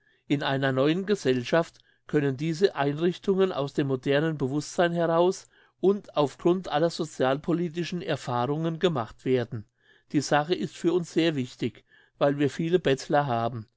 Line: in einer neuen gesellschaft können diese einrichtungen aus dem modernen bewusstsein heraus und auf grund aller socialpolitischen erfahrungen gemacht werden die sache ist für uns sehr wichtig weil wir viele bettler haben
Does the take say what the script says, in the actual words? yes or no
yes